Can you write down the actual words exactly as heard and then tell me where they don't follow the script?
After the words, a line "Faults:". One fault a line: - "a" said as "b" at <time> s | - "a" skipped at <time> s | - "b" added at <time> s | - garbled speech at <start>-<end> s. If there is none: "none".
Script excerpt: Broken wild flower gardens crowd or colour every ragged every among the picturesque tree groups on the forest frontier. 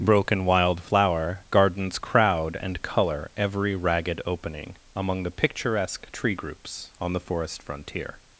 Broken wild flower gardens crowd and colour every ragged opening among the picturesque tree groups on the forest frontier.
Faults:
- "or" said as "and" at 2.6 s
- "every" said as "opening" at 4.2 s